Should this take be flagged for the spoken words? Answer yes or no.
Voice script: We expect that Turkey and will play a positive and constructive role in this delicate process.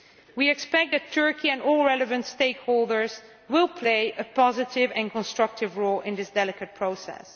yes